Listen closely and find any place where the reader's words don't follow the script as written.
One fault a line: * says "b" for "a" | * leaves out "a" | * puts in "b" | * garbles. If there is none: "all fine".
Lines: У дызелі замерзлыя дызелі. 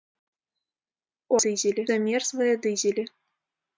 all fine